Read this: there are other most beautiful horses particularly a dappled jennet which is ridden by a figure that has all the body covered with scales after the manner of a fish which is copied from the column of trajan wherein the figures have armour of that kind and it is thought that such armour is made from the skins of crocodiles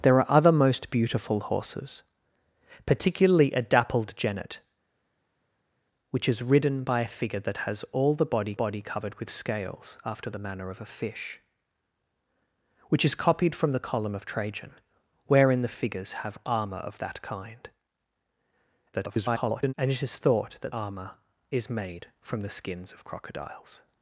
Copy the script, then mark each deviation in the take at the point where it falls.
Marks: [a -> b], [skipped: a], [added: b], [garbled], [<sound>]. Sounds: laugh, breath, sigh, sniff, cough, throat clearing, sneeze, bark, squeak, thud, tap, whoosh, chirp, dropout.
there are other most beautiful horses particularly a dappled jennet which is ridden by a figure that has all the body [added: body] covered with scales after the manner of a fish which is copied from the column of trajan wherein the figures have armour of that kind [garbled] and it is thought that [skipped: such] armour is made from the skins of crocodiles